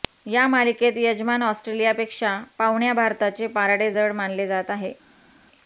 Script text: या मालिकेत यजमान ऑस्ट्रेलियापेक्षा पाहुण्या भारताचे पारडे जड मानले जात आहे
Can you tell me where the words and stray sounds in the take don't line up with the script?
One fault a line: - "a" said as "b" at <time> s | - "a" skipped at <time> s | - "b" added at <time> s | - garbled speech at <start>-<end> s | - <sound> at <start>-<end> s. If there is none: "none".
none